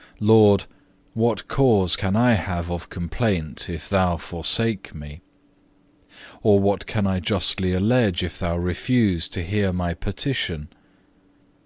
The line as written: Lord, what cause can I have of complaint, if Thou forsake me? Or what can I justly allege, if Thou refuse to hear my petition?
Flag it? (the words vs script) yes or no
no